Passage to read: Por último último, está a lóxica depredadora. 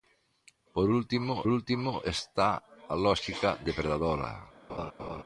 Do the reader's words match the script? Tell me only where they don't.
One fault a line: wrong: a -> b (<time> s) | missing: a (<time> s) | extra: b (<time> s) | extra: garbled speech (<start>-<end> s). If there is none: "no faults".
no faults